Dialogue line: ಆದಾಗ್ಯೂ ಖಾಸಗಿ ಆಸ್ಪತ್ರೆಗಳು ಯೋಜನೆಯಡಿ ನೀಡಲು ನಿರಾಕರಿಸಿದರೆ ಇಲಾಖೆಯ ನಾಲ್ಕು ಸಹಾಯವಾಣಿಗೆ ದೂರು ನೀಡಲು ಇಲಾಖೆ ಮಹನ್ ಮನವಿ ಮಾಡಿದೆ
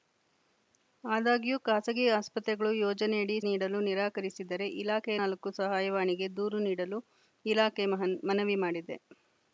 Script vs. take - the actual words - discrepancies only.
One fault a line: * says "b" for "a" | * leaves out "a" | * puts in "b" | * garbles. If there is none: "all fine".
all fine